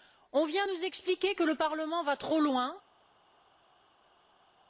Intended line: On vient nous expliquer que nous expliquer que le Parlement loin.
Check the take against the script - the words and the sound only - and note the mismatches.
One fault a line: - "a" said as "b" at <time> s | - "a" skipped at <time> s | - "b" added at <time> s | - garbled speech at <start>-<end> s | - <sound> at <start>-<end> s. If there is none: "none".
- "nous expliquer que le Parlement" said as "le Parlement va trop" at 1.4 s